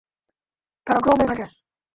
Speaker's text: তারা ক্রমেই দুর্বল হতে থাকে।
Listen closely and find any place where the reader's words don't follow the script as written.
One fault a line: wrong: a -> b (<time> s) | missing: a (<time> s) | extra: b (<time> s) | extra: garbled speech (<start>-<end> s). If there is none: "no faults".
missing: দুর্বল হতে (1.3 s)